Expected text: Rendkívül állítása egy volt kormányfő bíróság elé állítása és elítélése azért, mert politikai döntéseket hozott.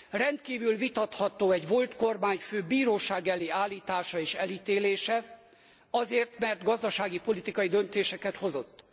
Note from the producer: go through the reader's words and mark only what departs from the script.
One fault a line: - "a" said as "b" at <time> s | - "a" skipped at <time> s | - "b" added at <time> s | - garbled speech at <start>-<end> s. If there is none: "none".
- "állítása" said as "vitatható" at 0.8 s
- "gazdasági" added at 6.6 s